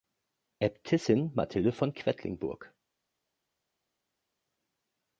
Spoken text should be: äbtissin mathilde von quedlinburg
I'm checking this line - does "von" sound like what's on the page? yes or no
yes